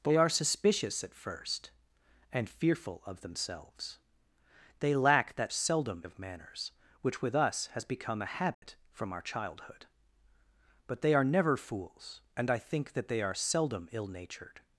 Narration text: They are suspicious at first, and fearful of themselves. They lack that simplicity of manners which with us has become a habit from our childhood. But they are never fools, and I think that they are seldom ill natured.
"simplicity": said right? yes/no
no